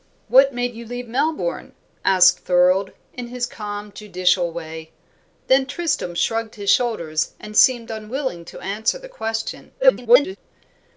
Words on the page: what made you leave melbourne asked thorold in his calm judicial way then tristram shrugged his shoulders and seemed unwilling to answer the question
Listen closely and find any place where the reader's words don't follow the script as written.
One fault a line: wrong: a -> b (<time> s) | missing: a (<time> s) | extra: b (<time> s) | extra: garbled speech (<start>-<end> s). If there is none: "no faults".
extra: garbled speech (9.8-10.4 s)